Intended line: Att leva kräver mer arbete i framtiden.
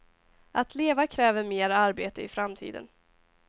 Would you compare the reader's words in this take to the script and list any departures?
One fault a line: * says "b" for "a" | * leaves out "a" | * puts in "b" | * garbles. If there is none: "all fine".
all fine